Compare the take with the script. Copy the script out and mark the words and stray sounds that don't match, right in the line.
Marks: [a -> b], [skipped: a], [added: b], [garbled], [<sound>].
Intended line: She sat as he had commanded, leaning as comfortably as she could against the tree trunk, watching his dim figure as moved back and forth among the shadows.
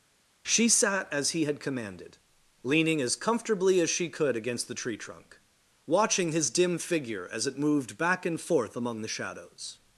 She sat as he had commanded, leaning as comfortably as she could against the tree trunk, watching his dim figure as [added: it] moved back and forth among the shadows.